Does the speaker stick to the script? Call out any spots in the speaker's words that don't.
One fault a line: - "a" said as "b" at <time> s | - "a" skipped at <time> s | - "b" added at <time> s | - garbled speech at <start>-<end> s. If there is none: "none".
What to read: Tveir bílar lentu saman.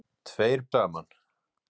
- "bílar lentu" skipped at 0.6 s